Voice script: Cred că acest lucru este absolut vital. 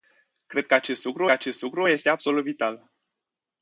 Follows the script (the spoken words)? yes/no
no